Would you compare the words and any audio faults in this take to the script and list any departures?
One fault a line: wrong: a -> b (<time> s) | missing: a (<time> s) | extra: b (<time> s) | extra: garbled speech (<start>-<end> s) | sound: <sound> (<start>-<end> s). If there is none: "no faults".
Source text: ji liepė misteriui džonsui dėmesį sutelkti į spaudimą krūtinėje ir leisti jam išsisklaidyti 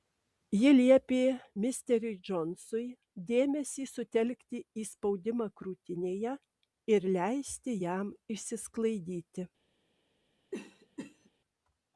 sound: cough (10.5-11.3 s)